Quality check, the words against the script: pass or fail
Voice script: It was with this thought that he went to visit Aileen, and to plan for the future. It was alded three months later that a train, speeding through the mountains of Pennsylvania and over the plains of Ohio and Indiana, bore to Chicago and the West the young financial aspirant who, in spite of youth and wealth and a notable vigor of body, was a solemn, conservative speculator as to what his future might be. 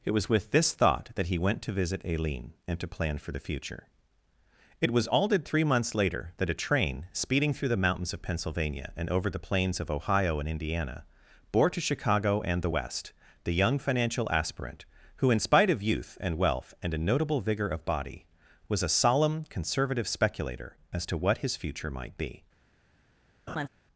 pass